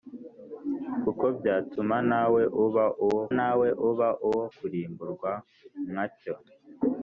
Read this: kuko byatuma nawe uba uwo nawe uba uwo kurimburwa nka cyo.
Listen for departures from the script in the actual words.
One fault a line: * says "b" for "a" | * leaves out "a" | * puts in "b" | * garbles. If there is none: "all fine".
all fine